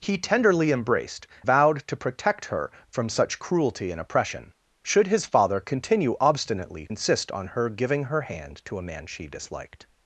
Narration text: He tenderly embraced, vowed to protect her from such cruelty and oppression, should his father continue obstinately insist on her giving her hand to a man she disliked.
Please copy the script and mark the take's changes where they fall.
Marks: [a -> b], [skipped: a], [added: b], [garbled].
He tenderly embraced, vowed to protect her from such cruelty and oppression, should his father continue obstinately insist on her giving her hand to a man she disliked.